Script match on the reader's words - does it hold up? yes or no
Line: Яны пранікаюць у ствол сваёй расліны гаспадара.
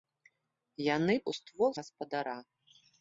no